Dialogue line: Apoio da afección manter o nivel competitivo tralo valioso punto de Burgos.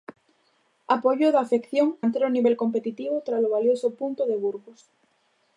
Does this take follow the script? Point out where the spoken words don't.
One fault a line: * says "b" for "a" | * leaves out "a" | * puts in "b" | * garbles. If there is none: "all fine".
all fine